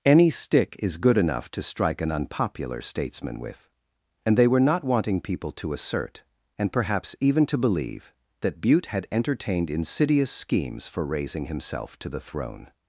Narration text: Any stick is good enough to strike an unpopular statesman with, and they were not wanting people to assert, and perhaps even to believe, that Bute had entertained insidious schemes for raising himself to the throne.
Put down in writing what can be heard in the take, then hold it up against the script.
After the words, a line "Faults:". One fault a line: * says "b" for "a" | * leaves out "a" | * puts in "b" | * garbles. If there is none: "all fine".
Any stick is good enough to strike an unpopular statesman with, and they were not wanting people to assert, and perhaps even to believe, that Bute had entertained insidious schemes for raising himself to the throne.
Faults:
all fine